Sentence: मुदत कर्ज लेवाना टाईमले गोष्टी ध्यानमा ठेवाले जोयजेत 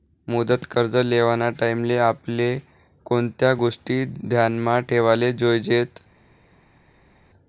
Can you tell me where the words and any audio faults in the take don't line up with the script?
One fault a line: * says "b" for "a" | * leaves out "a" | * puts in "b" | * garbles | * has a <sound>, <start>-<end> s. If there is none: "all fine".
* puts in "आपले कोणत्या"